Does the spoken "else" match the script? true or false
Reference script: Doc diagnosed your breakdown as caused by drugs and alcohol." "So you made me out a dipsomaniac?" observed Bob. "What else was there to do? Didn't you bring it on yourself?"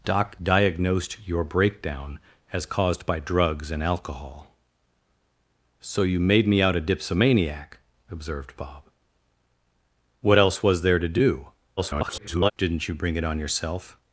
true